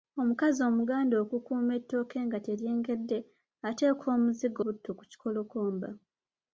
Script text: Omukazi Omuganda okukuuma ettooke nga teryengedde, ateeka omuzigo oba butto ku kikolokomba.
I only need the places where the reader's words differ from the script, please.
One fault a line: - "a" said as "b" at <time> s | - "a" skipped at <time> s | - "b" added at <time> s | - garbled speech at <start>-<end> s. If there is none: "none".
- "oba" skipped at 4.6 s